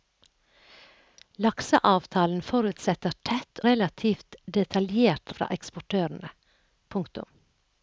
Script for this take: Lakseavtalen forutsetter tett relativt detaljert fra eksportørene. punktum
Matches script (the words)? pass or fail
pass